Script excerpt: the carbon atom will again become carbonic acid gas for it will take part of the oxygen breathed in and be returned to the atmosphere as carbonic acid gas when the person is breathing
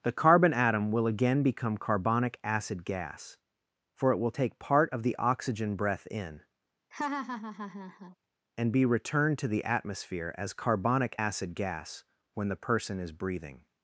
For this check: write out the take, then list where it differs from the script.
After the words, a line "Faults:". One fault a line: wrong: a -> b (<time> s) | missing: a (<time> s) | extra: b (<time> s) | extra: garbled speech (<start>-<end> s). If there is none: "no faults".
the carbon atom will again become carbonic acid gas for it will take part of the oxygen breath in and be returned to the atmosphere as carbonic acid gas when the person is breathing
Faults:
wrong: breathed -> breath (5.7 s)